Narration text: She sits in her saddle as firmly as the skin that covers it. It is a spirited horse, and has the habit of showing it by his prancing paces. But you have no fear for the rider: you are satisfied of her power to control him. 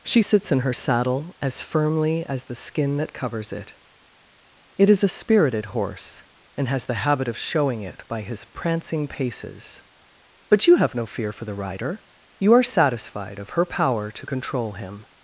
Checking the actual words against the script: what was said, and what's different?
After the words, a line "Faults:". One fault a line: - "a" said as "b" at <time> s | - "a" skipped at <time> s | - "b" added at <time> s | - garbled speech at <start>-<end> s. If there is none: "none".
She sits in her saddle as firmly as the skin that covers it. It is a spirited horse, and has the habit of showing it by his prancing paces. But you have no fear for the rider: you are satisfied of her power to control him.
Faults:
none